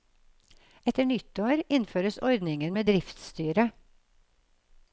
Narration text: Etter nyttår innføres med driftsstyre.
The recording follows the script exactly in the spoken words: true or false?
false